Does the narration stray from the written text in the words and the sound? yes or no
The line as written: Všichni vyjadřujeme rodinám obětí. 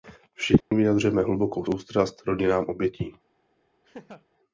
yes